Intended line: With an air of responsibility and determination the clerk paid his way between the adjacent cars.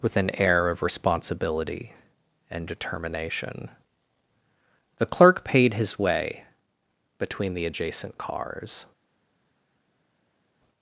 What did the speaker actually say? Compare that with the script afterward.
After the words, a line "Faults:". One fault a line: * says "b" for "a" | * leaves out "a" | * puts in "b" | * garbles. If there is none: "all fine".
With an air of responsibility and determination the clerk paid his way between the adjacent cars.
Faults:
all fine